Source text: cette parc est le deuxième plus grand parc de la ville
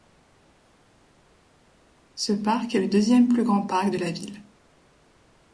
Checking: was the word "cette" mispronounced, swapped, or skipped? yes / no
yes